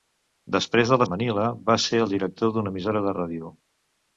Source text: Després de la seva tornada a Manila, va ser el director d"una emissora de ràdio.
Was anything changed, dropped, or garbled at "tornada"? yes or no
yes